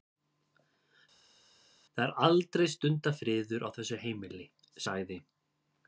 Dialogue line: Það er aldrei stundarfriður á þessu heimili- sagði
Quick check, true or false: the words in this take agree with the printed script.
true